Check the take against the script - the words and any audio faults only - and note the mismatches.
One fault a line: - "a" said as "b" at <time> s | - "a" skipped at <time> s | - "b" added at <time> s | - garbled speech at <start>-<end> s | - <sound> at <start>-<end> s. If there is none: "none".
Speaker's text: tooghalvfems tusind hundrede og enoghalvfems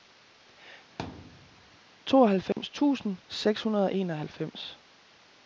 - thud at 1.0-1.8 s
- dropout at 2.5-2.6 s
- "seks" added at 3.3 s